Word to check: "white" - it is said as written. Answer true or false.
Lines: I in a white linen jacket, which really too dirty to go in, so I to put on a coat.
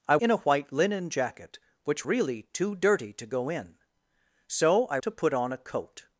true